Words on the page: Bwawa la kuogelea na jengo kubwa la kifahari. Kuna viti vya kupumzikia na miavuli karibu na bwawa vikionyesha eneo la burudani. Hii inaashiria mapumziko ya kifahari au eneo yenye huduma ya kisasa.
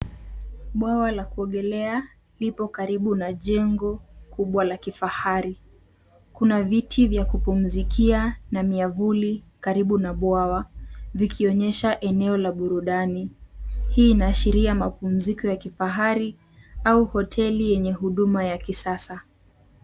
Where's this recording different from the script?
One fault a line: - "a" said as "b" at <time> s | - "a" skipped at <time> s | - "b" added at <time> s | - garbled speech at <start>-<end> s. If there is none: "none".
- "lipo karibu" added at 2.4 s
- "eneo" said as "hoteli" at 17.0 s